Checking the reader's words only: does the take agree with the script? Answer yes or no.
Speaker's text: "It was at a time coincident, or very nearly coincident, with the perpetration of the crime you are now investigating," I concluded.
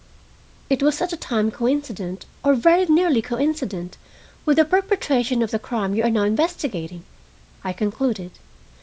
yes